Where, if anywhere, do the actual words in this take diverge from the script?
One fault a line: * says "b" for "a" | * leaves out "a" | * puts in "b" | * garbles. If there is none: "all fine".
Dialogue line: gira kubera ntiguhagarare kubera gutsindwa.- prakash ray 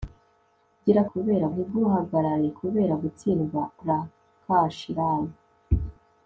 all fine